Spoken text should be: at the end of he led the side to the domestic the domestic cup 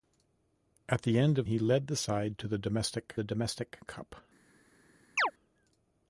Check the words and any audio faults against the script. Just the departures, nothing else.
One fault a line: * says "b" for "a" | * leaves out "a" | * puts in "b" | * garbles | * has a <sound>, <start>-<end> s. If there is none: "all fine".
* has a chirp, 5.2-5.3 s